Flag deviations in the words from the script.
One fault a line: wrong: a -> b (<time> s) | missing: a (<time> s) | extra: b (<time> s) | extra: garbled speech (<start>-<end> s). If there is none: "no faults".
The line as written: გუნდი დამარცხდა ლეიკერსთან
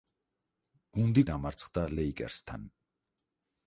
no faults